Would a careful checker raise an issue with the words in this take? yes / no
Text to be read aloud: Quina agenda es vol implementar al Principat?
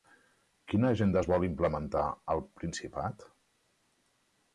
no